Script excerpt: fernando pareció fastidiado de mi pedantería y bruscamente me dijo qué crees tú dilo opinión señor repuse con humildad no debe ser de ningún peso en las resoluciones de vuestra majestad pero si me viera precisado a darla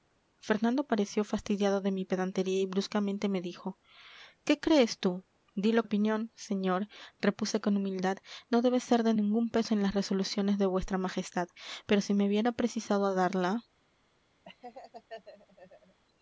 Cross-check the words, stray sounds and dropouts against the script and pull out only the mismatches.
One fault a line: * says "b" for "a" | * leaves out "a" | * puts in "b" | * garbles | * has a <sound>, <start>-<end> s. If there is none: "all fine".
* has a laugh, 14.4-16.0 s